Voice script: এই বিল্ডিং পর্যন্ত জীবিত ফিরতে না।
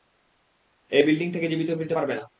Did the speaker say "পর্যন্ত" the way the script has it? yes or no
no